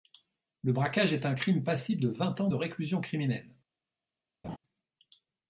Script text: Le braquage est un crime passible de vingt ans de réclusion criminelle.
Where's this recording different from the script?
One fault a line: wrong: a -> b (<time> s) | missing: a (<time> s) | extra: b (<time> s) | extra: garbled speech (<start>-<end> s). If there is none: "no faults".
no faults